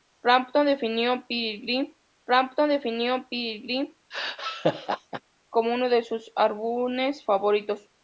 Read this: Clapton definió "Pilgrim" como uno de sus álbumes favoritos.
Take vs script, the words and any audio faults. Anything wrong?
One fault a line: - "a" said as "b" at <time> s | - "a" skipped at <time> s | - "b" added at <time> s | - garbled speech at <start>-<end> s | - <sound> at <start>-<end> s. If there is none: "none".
- "clapton definió Pilgrim" added at 2.2 s
- laugh at 4.1-5.2 s